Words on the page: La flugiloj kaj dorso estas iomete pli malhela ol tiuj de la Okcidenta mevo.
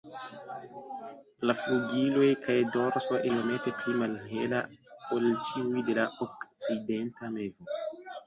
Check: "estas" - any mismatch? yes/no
yes